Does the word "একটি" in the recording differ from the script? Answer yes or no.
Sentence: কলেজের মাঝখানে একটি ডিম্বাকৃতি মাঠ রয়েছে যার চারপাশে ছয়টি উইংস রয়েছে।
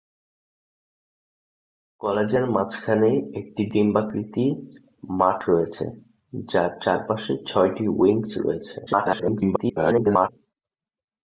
no